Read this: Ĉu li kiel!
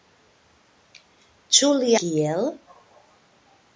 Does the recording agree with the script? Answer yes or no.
yes